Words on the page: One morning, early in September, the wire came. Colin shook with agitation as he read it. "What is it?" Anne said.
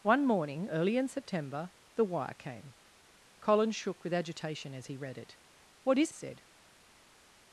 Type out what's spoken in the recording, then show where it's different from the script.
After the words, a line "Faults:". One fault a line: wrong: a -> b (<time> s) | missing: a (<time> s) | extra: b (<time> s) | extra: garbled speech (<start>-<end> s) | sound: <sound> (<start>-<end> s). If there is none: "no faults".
One morning, early in September, the wire came. Colin shook with agitation as he read it. "What is said.
Faults:
missing: it Anne (6.1 s)